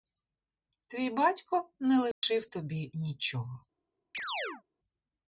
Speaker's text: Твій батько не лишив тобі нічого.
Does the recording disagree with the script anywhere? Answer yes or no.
no